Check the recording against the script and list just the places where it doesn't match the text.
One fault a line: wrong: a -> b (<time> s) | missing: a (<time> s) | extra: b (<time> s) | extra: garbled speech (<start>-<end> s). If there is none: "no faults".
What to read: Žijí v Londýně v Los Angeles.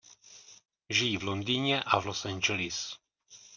extra: a (1.8 s)